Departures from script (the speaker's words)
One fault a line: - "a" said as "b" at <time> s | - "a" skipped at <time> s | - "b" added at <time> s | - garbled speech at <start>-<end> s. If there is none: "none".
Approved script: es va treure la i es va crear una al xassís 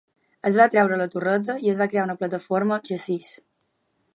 - "torreta" added at 1.1 s
- "plataforma" added at 2.2 s